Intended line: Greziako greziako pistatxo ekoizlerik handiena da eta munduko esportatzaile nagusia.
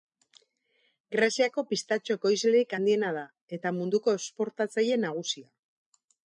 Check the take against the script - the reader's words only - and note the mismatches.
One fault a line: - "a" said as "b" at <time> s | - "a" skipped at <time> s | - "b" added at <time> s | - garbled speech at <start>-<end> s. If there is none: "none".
- "greziako" skipped at 1.6 s